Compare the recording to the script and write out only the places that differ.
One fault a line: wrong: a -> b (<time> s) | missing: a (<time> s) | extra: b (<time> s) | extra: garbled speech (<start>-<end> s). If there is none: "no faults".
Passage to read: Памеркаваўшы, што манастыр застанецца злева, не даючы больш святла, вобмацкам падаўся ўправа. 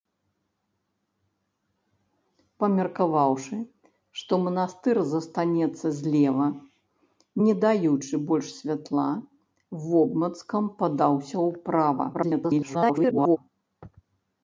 extra: garbled speech (12.1-13.4 s)